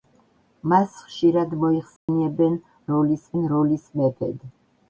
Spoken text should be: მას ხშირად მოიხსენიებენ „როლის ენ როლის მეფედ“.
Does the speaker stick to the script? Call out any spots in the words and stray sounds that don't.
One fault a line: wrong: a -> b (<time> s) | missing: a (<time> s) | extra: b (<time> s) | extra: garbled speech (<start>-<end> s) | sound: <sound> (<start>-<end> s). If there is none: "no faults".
sound: dropout (2.0-2.1 s)